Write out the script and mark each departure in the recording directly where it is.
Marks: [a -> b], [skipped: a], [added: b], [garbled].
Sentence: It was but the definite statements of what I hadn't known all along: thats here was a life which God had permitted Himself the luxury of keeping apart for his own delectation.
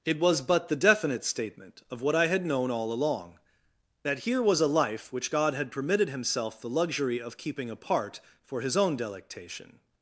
It was but the definite [statements -> statement] of what I [hadn't -> had] known all along: [thats -> that] here was a life which God had permitted Himself the luxury of keeping apart for his own delectation.